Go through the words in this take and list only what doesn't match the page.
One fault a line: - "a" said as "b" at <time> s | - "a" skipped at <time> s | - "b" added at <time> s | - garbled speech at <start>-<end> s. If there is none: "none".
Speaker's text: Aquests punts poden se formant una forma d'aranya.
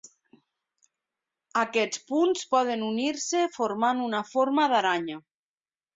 - "unir" added at 2.9 s